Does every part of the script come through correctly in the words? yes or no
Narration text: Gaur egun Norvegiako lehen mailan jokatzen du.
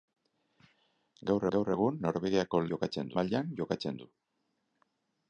no